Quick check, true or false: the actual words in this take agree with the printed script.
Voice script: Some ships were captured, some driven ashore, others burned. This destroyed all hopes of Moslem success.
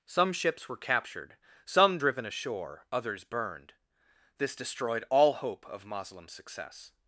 false